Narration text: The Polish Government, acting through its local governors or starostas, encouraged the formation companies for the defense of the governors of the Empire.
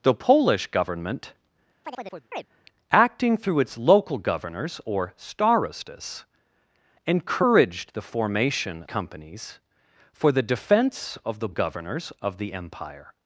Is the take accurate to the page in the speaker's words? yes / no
yes